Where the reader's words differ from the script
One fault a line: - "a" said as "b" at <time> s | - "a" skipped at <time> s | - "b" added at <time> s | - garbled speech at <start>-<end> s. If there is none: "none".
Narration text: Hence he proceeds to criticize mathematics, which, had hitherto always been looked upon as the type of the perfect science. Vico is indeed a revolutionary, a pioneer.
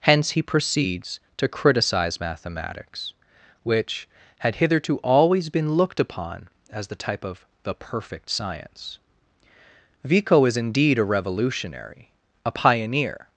none